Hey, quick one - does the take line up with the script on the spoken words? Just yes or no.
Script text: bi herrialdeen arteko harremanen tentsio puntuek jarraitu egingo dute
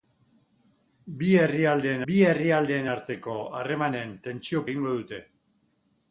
no